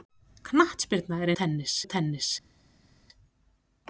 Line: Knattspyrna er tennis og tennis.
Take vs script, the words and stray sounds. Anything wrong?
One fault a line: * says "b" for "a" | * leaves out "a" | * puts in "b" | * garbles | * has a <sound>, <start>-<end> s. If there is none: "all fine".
all fine